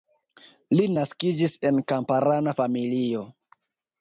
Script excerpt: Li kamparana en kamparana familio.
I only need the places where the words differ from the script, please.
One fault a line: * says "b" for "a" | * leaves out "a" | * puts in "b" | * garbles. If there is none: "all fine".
* says "naskiĝis" for "kamparana"